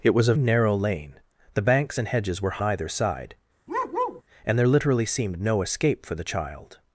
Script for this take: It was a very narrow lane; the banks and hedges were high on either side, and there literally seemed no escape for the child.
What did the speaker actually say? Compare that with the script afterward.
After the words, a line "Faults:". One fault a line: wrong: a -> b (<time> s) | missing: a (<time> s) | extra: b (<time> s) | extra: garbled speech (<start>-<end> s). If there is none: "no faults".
It was a narrow lane; the banks and hedges were either side, and there literally seemed no escape for the child.
Faults:
missing: very (0.3 s)
missing: high on (2.6 s)